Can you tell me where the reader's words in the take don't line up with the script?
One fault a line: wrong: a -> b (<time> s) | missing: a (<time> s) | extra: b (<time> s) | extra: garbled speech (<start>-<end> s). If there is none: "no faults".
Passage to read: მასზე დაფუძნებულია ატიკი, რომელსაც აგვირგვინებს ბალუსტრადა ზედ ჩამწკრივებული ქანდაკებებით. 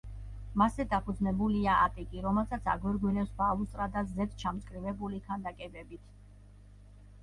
no faults